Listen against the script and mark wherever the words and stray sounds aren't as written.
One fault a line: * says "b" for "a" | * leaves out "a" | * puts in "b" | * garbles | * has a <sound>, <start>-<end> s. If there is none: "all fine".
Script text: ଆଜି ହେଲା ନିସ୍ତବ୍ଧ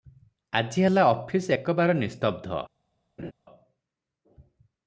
* puts in "ଅଫିସ ଏକବାର"
* has a laugh, 3.2-3.3 s